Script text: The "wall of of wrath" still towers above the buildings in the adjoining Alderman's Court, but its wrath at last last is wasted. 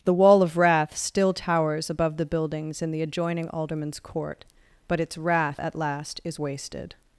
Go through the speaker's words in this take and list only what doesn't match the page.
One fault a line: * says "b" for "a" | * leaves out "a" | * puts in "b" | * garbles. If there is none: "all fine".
* leaves out "of"
* leaves out "last"